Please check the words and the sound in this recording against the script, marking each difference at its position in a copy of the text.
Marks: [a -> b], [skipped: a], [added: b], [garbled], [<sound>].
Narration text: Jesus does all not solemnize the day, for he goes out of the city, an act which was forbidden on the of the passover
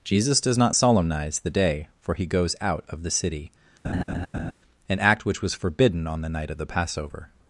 Jesus does [skipped: all] not solemnize the day, for he goes out of the city, [laugh] an act which was forbidden on the [added: night] of the passover